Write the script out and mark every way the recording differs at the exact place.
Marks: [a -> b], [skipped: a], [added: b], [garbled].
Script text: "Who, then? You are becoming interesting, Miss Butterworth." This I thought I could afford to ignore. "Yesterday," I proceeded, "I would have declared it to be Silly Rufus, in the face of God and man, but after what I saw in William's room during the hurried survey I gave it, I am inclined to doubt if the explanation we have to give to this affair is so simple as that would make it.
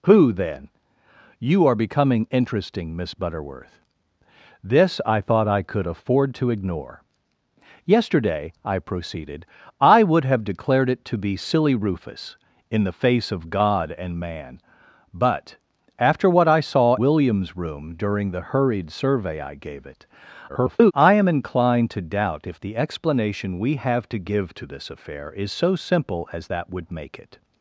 "Who, then? You are becoming interesting, Miss Butterworth." This I thought I could afford to ignore. "Yesterday," I proceeded, "I would have declared it to be Silly Rufus, in the face of God and man, but after what I saw [skipped: in] William's room during the hurried survey I gave it, [garbled] I am inclined to doubt if the explanation we have to give to this affair is so simple as that would make it.